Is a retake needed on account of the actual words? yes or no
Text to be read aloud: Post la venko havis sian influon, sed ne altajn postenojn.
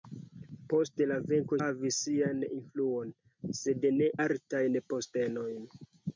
no